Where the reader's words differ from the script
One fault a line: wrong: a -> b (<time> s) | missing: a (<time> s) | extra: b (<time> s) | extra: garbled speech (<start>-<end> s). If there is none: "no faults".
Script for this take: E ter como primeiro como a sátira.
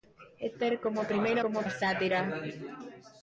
no faults